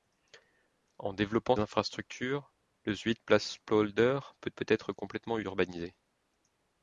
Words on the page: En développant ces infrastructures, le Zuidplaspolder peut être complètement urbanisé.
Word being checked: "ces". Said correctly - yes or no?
no